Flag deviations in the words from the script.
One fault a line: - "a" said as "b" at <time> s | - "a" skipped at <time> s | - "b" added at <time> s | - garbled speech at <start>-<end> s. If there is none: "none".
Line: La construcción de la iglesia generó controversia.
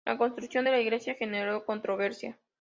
none